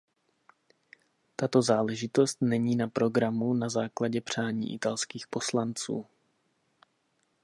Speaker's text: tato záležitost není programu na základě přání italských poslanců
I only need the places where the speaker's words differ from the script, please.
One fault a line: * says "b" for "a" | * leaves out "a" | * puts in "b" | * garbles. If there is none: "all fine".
* puts in "na"